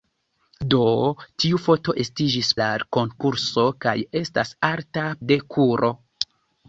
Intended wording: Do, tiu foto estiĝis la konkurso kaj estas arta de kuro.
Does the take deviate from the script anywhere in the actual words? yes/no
no